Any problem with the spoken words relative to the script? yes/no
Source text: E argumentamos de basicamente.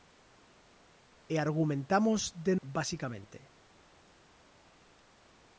no